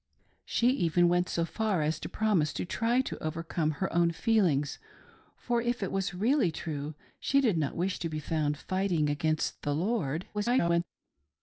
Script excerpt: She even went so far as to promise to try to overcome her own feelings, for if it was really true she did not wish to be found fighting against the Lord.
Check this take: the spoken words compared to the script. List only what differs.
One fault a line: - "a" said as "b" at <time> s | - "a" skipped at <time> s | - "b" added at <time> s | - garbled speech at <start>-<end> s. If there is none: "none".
- garbled speech at 10.3-10.8 s